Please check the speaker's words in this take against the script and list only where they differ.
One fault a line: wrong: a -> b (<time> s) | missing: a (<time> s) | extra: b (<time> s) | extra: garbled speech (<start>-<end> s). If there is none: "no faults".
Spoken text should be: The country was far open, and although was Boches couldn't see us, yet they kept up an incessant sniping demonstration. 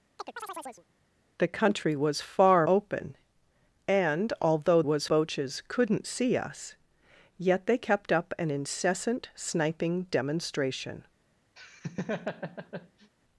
no faults